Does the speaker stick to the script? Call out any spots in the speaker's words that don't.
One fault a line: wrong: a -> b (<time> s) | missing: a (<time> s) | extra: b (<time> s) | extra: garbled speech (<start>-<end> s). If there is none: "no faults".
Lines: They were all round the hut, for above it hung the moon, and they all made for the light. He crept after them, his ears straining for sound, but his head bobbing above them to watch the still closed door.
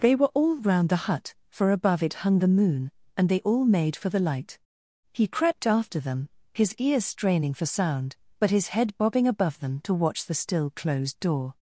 no faults